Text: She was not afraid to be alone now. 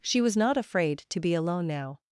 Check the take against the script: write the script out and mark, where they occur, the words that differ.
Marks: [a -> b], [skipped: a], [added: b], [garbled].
She was not afraid to be alone now.